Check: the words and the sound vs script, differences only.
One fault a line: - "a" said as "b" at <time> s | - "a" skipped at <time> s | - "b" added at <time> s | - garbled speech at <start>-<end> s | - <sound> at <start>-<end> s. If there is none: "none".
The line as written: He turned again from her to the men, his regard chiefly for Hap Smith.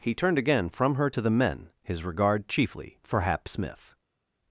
none